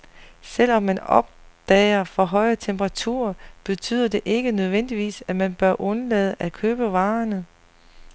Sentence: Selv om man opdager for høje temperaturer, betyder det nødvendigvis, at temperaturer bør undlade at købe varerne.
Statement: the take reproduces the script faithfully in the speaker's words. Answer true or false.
false